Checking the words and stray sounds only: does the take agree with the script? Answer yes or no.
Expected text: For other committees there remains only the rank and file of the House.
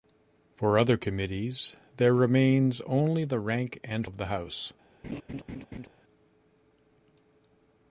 no